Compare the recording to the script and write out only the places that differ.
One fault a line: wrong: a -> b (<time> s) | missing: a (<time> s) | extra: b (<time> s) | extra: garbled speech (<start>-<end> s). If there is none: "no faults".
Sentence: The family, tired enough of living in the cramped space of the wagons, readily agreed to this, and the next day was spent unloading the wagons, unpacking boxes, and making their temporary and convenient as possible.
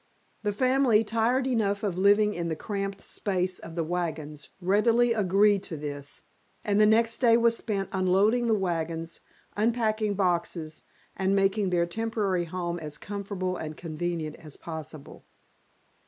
extra: home as comfortable (12.4 s)